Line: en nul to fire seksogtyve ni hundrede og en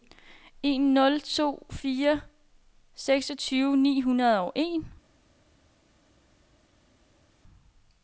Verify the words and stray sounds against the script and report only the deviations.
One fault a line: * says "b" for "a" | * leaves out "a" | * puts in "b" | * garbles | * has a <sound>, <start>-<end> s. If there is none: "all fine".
all fine